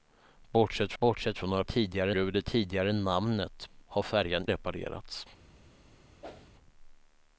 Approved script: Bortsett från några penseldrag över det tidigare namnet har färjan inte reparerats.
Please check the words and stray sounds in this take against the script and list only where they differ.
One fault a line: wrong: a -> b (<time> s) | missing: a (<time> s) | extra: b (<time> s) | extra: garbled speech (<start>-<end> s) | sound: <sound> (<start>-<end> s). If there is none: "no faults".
extra: bortsett (1.0 s)
wrong: penseldrag -> tidigare (1.6 s)
missing: inte (4.5 s)
sound: whoosh (6.2-6.5 s)